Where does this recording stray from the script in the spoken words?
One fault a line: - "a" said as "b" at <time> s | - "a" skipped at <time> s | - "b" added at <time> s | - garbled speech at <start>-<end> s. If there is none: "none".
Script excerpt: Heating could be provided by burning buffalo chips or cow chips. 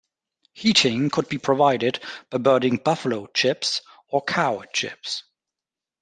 none